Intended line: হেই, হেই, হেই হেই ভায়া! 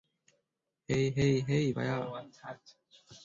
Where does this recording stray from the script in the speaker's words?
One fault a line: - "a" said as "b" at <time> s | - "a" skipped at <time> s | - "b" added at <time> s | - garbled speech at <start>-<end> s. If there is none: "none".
- "হেই" skipped at 1.6 s